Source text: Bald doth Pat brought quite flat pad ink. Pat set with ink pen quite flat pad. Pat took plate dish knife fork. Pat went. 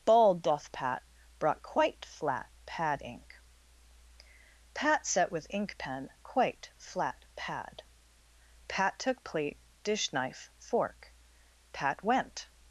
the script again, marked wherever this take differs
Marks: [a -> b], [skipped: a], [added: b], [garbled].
Bald doth Pat brought quite flat pad ink. Pat set with ink pen quite flat pad. Pat took plate dish knife fork. Pat went.